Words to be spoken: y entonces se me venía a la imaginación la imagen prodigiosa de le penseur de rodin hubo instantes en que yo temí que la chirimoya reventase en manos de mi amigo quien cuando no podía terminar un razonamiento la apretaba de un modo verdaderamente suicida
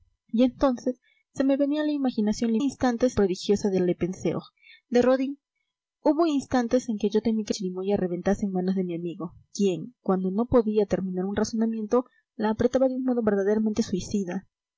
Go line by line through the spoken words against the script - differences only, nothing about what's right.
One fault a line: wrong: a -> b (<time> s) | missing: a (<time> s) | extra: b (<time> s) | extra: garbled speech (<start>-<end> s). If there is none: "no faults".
wrong: imagen -> instantes (2.6 s)
missing: la (7.5 s)